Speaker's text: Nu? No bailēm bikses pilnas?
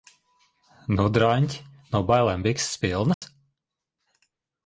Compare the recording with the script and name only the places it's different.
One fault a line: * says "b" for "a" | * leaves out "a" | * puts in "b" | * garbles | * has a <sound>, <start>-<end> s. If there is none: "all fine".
* puts in "draņķi"
* has a dropout, 3.1-3.2 s